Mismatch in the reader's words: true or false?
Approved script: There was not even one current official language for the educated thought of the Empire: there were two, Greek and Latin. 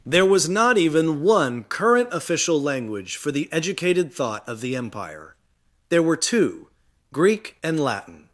false